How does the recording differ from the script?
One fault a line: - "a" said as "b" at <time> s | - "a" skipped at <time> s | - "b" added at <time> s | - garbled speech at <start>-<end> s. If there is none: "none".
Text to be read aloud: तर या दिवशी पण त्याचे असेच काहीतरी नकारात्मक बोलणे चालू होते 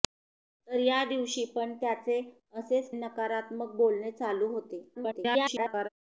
- "काहीतरी" skipped at 2.9 s
- garbled speech at 4.9-5.9 s